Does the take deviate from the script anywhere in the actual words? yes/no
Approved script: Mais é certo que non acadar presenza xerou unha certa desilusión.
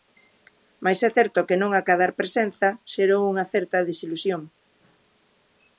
no